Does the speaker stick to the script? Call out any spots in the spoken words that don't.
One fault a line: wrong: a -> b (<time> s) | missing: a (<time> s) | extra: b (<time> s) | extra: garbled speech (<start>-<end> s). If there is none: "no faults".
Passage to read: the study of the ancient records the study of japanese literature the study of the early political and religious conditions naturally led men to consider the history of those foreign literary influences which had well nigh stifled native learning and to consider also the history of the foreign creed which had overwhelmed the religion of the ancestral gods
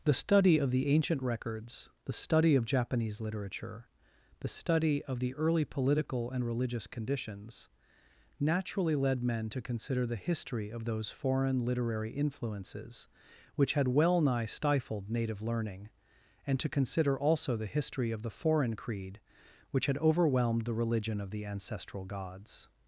no faults